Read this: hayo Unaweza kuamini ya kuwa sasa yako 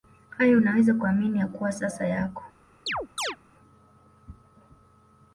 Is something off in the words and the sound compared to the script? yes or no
yes